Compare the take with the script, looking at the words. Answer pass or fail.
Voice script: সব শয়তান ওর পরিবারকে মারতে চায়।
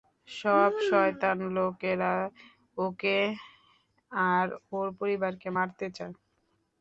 fail